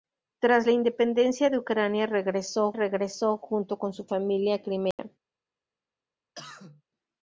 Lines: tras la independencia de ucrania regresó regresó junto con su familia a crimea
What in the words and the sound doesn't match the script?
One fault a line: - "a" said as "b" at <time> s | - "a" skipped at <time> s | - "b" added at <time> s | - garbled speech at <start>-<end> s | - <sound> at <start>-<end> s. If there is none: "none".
- dropout at 4.9-5.0 s
- cough at 6.3-6.8 s